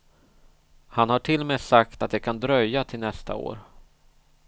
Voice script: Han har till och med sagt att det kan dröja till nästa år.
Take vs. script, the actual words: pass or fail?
pass